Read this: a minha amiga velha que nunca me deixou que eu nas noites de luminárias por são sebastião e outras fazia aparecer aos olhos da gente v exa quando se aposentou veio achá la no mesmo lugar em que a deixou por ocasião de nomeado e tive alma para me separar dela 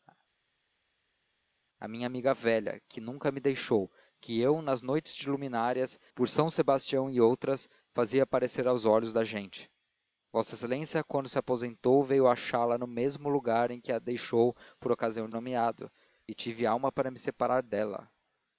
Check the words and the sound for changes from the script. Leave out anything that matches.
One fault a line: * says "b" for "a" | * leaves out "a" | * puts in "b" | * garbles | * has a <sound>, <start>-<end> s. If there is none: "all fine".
all fine